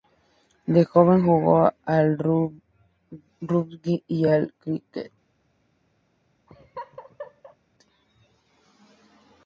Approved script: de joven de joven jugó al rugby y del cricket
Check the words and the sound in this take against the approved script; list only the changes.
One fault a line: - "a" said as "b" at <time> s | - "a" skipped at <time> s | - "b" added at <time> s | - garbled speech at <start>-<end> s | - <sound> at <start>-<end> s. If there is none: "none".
- "de joven" skipped at 1.2 s
- "del" said as "al" at 4.3 s
- laugh at 6.5-7.6 s